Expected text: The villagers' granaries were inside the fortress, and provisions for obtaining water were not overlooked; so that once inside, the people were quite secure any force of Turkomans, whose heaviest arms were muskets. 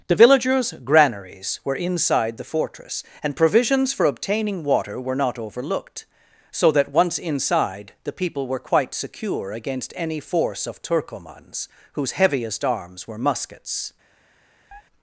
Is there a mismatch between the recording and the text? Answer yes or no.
yes